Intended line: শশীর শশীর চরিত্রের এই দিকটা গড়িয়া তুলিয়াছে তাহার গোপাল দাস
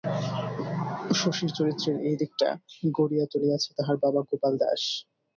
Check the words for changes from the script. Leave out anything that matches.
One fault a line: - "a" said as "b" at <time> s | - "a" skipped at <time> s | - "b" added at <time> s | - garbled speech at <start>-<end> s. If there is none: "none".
- "শশীর" skipped at 1.5 s
- "বাবা" added at 4.0 s